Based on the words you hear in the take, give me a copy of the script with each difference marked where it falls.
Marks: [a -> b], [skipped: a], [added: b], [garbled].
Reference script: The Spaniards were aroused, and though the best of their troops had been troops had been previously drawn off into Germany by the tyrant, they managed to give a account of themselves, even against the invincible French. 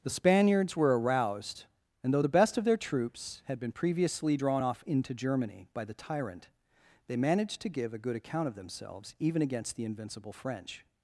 The Spaniards were aroused, and though the best of their troops had been [skipped: troops had been] previously drawn off into Germany by the tyrant, they managed to give a [added: good] account of themselves, even against the invincible French.